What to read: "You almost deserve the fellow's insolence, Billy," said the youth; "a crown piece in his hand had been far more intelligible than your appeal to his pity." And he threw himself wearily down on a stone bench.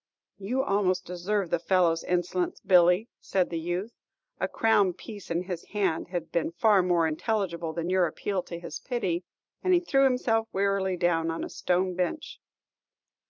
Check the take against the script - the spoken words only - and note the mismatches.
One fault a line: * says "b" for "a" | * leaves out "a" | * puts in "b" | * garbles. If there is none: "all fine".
all fine